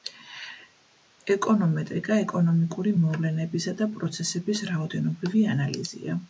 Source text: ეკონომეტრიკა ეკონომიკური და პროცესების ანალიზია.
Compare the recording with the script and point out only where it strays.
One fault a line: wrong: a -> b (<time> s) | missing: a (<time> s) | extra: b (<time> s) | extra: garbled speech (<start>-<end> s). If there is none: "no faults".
extra: მოვლენებისა (3.0 s)
extra: რაოდენობრივი (4.7 s)